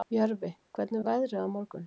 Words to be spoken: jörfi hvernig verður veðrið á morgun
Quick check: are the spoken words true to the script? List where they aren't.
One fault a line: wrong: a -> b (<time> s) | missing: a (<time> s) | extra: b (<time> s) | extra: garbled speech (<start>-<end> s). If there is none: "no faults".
missing: verður (1.0 s)